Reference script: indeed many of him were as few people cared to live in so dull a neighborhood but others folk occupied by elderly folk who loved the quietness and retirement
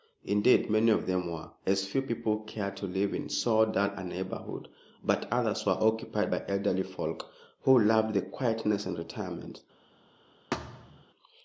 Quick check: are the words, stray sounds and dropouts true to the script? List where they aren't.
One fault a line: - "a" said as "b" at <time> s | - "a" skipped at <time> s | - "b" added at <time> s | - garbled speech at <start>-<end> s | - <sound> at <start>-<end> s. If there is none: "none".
- "him" said as "them" at 1.1 s
- "folk" said as "were" at 5.6 s
- thud at 10.5-11.0 s